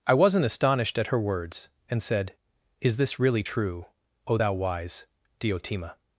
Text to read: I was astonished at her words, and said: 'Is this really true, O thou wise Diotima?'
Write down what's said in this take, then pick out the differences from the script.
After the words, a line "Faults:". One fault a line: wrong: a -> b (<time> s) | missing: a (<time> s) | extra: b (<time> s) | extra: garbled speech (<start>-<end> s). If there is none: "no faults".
I wasn't astonished at her words, and said: 'Is this really true, O thou wise Diotima?'
Faults:
wrong: was -> wasn't (0.1 s)